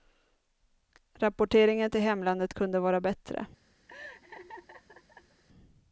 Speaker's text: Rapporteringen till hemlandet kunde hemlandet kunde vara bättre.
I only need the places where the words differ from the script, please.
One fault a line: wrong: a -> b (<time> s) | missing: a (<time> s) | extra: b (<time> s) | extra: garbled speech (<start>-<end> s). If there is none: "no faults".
missing: hemlandet kunde (2.8 s)